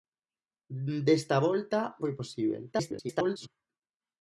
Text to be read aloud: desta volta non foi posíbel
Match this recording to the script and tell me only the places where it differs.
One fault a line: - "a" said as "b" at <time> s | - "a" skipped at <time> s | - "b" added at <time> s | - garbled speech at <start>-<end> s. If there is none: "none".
- "non" skipped at 1.8 s
- garbled speech at 2.7-3.5 s